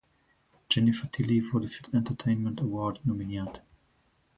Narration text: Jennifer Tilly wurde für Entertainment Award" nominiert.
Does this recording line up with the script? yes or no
yes